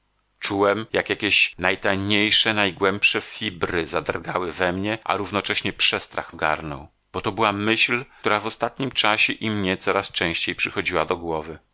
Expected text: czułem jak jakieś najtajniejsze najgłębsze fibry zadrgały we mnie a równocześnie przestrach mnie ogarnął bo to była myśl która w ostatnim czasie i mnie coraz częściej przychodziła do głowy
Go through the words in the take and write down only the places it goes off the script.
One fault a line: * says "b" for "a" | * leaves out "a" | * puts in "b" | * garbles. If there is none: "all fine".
* leaves out "mnie"